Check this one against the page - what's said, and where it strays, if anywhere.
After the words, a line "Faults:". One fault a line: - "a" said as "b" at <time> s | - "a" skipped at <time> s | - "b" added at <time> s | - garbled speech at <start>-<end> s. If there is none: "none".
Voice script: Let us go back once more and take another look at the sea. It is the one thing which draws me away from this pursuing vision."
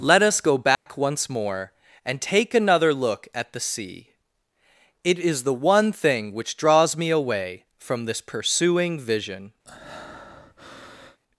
Let us go back once more and take another look at the sea. It is the one thing which draws me away from this pursuing vision."
Faults:
none